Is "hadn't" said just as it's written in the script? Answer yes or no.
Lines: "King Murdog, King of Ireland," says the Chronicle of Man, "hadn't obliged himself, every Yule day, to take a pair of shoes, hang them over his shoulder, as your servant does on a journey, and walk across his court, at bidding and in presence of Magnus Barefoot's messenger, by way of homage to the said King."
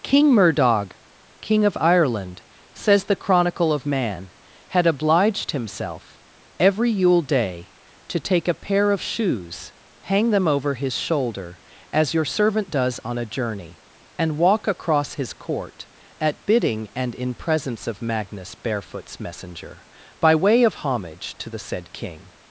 no